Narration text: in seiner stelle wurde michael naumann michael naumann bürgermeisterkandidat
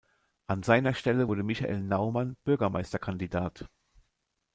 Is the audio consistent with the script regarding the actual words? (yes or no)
no